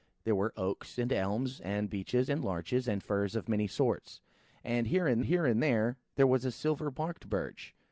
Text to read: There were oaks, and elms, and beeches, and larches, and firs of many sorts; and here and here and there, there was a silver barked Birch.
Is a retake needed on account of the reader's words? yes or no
no